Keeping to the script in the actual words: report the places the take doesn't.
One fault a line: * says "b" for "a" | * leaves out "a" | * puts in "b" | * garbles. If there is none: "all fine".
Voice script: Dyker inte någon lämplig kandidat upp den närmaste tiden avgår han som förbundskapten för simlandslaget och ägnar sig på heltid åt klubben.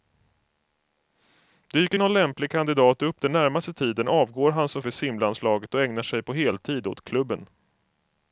* leaves out "inte"
* leaves out "förbundskapten"